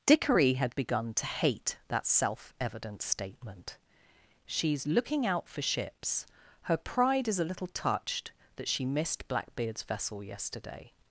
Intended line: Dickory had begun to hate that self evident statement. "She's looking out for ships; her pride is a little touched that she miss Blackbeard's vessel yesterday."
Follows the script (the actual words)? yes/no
no